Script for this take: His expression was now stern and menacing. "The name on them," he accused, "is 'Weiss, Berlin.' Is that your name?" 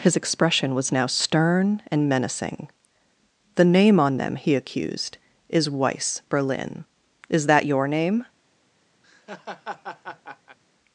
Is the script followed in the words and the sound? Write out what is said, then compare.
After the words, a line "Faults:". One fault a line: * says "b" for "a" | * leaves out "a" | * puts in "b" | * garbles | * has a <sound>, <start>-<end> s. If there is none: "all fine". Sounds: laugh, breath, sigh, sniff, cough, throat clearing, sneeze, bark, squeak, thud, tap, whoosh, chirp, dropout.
His expression was now stern and menacing. "The name on them," he accused, "is 'Weiss, Berlin.' Is that your name?"
Faults:
* has a laugh, 9.0-10.6 s